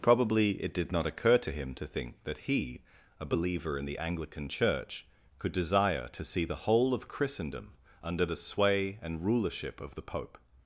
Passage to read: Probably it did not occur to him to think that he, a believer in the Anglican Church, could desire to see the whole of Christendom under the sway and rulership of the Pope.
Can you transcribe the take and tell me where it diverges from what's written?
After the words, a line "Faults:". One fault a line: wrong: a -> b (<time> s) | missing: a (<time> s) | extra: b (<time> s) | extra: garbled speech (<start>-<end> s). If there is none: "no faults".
Probably it did not occur to him to think that he, a believer in the Anglican Church, could desire to see the whole of Christendom under the sway and rulership of the Pope.
Faults:
no faults